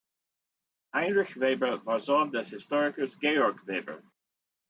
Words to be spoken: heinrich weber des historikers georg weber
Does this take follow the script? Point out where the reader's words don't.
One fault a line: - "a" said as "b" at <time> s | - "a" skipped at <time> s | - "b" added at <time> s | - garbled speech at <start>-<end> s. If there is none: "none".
- "war sohn" added at 1.9 s